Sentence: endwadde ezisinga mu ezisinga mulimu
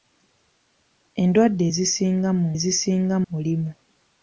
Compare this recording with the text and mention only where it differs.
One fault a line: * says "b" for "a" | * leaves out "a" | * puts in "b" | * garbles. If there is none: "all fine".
all fine